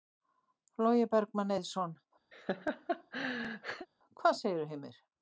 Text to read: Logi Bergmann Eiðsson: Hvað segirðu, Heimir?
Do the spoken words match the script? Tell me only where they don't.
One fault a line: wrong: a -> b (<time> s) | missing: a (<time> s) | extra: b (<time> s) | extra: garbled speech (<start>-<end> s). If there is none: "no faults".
no faults